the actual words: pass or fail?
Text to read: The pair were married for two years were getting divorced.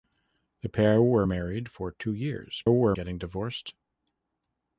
pass